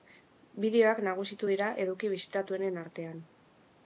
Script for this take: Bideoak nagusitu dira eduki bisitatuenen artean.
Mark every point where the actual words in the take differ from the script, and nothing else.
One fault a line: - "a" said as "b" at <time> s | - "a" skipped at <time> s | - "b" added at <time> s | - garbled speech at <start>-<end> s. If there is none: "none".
none